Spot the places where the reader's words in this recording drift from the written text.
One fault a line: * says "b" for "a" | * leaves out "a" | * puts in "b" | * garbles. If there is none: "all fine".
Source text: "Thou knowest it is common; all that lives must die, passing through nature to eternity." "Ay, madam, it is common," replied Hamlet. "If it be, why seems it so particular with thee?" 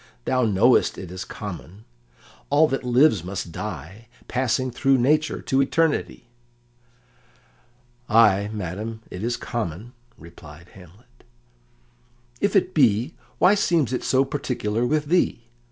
all fine